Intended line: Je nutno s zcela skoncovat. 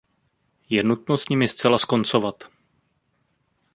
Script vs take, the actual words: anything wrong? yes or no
yes